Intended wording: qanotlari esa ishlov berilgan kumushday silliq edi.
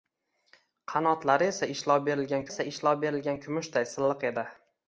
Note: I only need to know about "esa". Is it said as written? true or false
true